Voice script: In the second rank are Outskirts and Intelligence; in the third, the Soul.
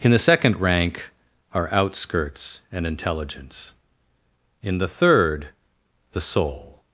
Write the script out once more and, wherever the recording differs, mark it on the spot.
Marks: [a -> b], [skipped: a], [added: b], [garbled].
In the second rank are Outskirts and Intelligence; in the third, the Soul.